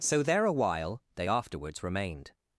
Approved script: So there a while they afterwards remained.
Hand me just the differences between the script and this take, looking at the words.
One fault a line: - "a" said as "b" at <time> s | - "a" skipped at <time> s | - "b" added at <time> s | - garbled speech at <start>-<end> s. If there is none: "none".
none